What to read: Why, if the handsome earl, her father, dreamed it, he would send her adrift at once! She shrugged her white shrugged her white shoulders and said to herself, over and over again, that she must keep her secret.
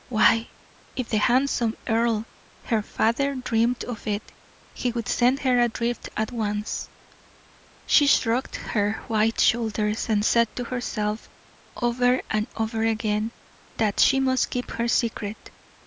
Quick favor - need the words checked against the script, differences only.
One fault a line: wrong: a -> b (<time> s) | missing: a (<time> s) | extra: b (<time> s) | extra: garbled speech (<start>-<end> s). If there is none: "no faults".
extra: of (3.8 s)
missing: shrugged her white (9.4 s)